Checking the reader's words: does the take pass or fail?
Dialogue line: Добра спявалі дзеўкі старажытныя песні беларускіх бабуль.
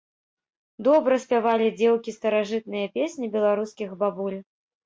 pass